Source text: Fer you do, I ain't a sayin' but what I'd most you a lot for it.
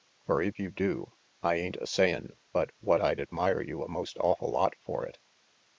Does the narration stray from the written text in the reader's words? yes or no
yes